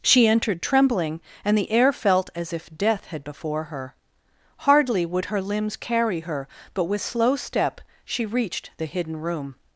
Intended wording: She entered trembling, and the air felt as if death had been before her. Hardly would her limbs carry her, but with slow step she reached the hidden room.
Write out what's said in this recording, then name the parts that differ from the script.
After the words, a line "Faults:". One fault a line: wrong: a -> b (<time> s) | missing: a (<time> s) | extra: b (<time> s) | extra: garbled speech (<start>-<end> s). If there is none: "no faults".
She entered trembling, and the air felt as if death had before her. Hardly would her limbs carry her, but with slow step she reached the hidden room.
Faults:
missing: been (3.2 s)